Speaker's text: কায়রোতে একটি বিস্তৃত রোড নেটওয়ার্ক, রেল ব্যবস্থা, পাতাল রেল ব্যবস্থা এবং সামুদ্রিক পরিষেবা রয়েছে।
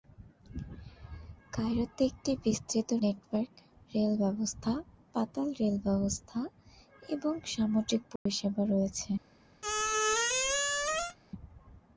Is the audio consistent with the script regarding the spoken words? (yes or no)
no